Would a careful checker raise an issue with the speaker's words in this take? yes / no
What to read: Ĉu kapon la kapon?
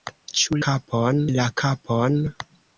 no